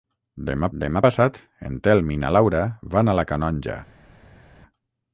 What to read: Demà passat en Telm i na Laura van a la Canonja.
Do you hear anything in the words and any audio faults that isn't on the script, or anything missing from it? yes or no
yes